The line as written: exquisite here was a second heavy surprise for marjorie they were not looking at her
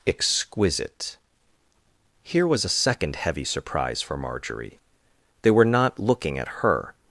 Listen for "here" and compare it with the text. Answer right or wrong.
right